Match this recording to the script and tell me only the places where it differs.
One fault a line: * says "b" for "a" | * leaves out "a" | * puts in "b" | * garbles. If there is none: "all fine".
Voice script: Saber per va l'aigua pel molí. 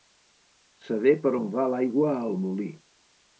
* puts in "on"
* says "al" for "pel"